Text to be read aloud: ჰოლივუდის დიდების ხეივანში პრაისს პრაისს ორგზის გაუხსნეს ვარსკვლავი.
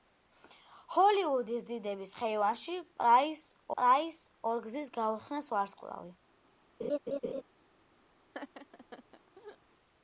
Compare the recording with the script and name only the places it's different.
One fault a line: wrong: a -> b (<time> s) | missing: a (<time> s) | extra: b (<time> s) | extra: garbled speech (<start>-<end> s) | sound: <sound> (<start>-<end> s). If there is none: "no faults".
sound: laugh (6.8-7.4 s)
sound: laugh (8.3-9.6 s)